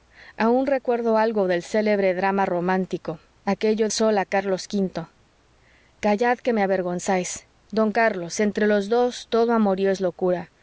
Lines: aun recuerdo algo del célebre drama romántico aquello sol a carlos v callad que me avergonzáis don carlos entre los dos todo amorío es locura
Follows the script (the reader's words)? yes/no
yes